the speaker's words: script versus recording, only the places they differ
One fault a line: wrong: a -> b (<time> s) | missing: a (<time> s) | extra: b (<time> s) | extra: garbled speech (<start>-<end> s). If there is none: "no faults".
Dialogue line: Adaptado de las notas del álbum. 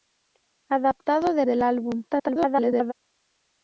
missing: las notas (1.4 s)
extra: garbled speech (2.1-2.9 s)